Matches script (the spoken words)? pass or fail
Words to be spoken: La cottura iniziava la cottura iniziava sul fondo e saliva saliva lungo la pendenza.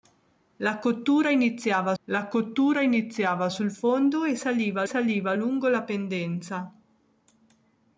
pass